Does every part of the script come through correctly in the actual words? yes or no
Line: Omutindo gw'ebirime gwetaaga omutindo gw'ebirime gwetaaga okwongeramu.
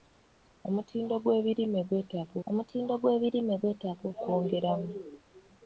yes